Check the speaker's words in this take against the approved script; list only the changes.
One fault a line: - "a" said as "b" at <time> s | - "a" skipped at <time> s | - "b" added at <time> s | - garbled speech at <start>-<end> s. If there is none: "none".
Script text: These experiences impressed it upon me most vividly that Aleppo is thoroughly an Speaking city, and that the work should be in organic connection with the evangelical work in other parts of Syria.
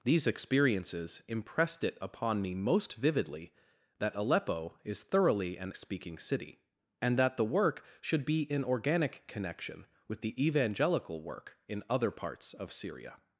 none